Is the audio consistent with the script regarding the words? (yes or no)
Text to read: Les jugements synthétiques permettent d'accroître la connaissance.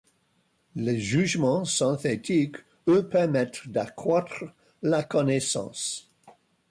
no